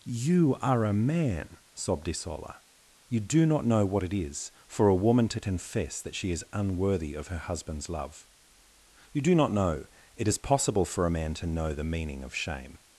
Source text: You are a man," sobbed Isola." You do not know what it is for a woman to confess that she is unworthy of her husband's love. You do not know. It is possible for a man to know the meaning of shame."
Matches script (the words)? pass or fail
pass